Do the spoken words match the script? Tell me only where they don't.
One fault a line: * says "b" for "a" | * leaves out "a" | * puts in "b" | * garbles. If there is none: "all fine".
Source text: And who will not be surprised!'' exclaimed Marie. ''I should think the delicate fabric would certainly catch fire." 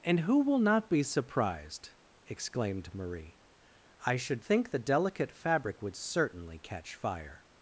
all fine